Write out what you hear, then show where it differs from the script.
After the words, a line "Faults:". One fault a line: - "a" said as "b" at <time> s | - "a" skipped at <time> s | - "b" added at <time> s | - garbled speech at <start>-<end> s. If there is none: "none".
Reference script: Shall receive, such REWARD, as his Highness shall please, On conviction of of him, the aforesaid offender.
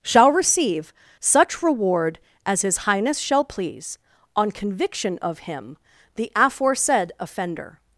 Shall receive, such REWARD, as his Highness shall please, On conviction of him, the aforesaid offender.
Faults:
- "of" skipped at 5.4 s